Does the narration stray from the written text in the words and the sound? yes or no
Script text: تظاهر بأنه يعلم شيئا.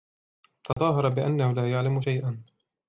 yes